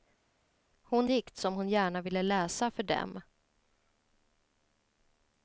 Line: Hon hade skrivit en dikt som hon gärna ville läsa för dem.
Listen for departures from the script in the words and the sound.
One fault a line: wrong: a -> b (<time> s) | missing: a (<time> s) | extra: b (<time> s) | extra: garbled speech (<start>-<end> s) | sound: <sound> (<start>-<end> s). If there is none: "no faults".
missing: hade skrivit en (1.1 s)